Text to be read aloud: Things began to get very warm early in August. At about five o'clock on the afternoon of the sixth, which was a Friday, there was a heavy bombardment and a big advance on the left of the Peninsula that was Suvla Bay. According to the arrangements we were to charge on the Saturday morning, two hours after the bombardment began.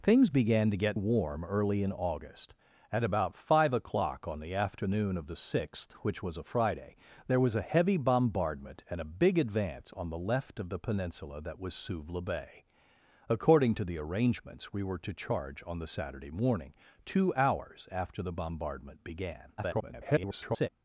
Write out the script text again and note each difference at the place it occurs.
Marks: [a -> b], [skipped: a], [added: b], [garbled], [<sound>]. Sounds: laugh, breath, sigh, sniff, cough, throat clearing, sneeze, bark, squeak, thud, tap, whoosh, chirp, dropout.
Things began to get [skipped: very] warm early in August. At about five o'clock on the afternoon of the sixth, which was a Friday, there was a heavy bombardment and a big advance on the left of the Peninsula that was Suvla Bay. According to the arrangements we were to charge on the Saturday morning, two hours after the bombardment began. [garbled]